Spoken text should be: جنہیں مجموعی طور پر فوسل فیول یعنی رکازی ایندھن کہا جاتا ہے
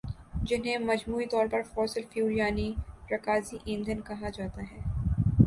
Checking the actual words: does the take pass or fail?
pass